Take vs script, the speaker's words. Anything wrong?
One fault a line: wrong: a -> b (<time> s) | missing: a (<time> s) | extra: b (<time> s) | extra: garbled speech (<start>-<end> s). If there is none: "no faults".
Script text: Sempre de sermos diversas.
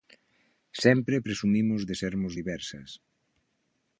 extra: presumimos (1.2 s)